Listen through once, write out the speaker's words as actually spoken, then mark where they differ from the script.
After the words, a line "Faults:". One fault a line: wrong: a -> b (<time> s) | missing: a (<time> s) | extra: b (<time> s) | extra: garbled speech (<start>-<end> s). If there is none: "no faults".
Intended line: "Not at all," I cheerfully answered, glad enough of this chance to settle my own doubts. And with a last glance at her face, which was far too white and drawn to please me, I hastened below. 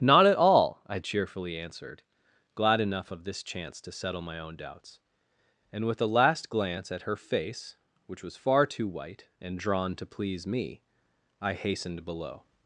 "Not at all," I cheerfully answered, glad enough of this chance to settle my own doubts. And with a last glance at her face, which was far too white and drawn to please me, I hastened below.
Faults:
no faults